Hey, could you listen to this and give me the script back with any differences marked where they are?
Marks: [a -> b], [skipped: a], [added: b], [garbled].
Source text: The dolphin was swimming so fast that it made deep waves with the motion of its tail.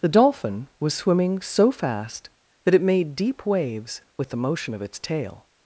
The dolphin was swimming so fast that it made deep waves with the motion of its tail.